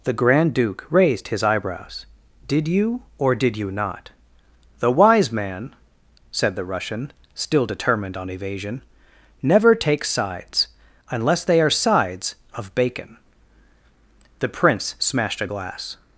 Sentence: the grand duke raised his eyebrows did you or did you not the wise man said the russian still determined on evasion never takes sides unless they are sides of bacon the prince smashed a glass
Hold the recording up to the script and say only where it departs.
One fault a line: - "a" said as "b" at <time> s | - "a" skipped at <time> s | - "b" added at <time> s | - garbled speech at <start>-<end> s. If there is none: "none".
none